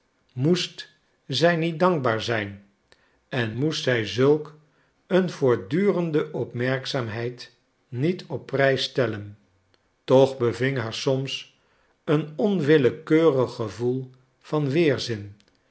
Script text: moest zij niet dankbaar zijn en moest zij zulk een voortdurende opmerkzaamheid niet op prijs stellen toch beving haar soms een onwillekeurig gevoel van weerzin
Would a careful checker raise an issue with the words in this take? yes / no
no